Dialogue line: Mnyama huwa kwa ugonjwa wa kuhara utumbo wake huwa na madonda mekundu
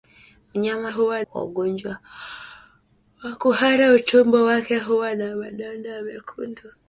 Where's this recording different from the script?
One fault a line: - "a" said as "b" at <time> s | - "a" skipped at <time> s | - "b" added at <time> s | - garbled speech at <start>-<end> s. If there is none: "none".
none